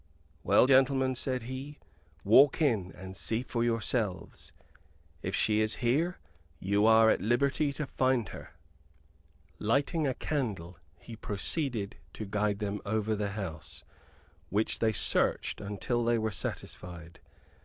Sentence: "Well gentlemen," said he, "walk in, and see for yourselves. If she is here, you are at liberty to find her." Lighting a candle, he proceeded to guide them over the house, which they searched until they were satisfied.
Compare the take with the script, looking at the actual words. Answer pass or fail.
pass